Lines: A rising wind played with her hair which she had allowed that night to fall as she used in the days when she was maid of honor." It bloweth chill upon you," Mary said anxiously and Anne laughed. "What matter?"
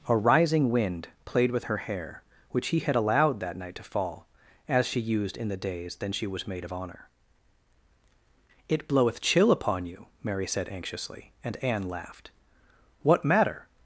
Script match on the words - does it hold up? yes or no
no